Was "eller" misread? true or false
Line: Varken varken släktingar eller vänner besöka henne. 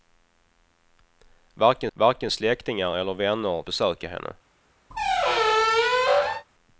false